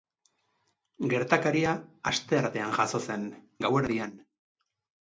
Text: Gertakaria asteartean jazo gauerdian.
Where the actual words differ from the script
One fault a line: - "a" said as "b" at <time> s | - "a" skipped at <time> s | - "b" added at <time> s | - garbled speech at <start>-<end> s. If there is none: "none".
- "zen" added at 3.1 s